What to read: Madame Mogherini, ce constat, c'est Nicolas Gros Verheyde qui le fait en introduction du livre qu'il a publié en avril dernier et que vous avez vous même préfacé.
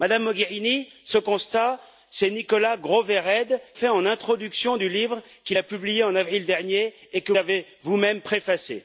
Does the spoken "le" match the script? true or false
false